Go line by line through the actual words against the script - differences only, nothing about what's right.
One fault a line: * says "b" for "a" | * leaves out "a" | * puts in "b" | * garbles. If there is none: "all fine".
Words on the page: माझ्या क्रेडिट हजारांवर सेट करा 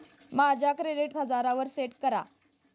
all fine